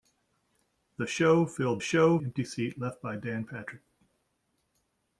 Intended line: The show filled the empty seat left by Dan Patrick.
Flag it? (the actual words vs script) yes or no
yes